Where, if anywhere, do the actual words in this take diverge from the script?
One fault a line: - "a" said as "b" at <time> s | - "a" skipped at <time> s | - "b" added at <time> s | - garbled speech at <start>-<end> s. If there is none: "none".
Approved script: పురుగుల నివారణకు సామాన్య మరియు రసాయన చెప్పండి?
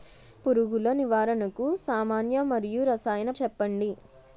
none